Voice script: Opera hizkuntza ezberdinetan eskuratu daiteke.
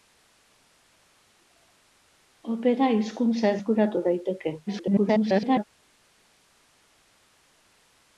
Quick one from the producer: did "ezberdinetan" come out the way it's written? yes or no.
no